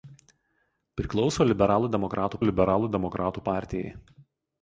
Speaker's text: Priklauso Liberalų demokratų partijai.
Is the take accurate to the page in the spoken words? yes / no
no